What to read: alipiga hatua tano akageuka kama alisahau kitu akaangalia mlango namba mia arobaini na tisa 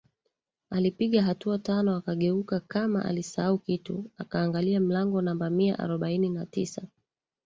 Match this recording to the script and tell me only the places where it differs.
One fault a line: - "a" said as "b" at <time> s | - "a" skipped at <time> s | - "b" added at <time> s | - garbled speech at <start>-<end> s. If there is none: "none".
none